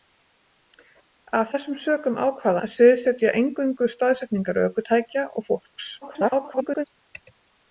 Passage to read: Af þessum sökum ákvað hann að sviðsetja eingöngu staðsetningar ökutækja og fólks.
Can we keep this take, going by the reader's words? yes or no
no